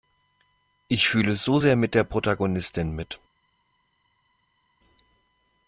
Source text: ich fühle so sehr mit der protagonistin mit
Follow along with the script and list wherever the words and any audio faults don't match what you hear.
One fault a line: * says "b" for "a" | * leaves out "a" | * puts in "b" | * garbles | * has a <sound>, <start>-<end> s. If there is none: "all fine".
all fine